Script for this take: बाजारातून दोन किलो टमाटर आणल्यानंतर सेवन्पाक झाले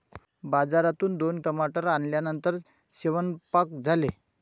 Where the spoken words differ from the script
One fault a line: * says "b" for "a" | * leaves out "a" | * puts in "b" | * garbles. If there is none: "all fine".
* leaves out "किलो"